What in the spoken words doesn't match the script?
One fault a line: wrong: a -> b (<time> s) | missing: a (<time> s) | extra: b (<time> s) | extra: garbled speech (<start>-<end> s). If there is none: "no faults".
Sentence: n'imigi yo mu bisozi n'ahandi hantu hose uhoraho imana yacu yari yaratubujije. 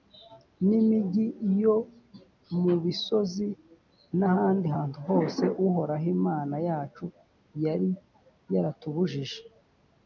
no faults